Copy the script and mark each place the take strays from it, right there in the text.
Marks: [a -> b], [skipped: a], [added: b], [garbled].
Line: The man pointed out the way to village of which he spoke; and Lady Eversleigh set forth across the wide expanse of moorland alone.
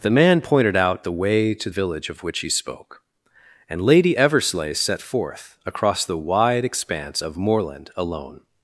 The man pointed out the way to village of which he spoke; and Lady Eversleigh set forth across the wide expanse of moorland alone.